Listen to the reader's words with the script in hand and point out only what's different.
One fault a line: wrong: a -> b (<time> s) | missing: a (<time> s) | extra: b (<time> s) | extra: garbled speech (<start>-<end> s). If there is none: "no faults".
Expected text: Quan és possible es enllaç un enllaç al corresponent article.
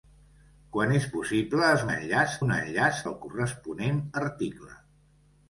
no faults